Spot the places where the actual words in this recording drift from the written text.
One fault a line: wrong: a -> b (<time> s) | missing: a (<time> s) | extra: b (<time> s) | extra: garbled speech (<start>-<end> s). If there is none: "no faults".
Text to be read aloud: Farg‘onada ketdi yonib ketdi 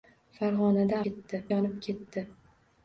no faults